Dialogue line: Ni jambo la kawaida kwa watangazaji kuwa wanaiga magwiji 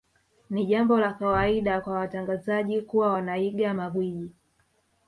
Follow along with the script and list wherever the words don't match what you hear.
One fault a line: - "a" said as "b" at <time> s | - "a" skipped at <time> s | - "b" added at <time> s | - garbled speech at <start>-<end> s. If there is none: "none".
none